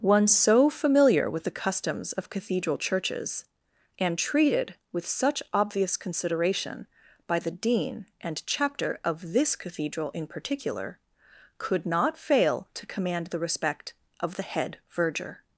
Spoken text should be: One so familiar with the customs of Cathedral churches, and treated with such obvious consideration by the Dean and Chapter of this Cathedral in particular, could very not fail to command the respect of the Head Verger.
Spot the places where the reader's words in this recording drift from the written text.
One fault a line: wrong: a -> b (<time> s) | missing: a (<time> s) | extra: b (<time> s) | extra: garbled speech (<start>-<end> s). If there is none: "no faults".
missing: very (11.8 s)